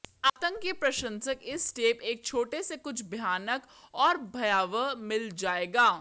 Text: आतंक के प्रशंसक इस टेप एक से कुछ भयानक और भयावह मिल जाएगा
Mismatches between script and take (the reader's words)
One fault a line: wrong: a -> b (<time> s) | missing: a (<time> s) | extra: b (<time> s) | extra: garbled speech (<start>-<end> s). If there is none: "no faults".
extra: छोटे (2.2 s)